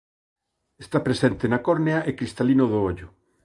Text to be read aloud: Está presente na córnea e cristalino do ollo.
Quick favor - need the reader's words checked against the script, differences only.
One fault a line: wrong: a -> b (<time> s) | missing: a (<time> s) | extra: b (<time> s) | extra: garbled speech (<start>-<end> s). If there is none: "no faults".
no faults